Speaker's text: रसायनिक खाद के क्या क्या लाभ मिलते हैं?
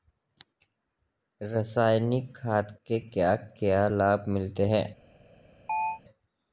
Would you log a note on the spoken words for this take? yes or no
no